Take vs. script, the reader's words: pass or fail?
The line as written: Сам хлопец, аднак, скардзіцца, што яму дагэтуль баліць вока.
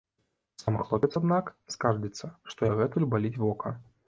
fail